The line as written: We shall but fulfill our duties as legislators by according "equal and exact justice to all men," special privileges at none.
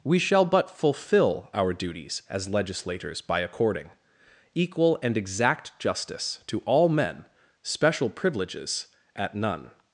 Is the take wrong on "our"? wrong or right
right